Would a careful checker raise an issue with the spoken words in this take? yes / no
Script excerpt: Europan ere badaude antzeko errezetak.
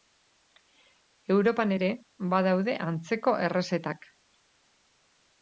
no